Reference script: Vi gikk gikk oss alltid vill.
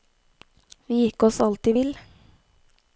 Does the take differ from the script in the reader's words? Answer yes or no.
yes